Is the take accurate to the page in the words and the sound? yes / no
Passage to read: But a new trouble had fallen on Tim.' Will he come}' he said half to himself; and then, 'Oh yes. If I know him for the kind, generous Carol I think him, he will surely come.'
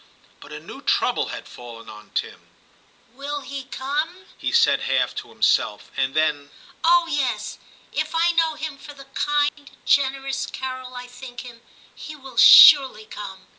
no